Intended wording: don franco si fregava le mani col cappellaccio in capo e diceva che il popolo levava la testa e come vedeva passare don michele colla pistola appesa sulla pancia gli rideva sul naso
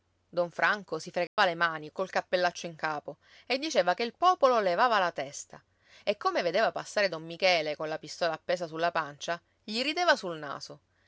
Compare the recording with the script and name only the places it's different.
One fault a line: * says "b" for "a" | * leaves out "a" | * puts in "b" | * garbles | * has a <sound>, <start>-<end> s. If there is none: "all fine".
* has a dropout, 1.3-1.4 s